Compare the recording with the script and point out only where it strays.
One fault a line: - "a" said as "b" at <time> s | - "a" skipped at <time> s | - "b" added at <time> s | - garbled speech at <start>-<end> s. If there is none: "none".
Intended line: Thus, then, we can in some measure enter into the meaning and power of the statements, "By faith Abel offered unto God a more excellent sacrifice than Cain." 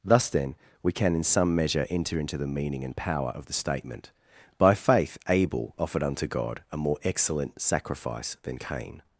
- "statements" said as "statement" at 3.5 s